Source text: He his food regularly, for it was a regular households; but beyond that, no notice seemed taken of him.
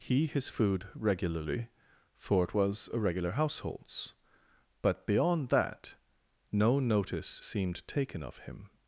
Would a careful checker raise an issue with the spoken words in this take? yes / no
no